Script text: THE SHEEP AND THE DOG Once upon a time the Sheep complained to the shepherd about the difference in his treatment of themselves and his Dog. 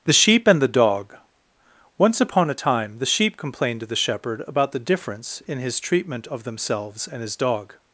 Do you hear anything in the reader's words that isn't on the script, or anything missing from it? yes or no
no